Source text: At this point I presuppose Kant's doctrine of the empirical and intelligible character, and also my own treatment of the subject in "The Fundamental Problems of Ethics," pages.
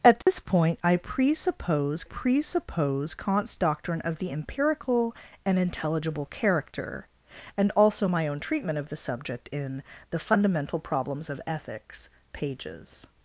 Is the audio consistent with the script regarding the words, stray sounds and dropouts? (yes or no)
no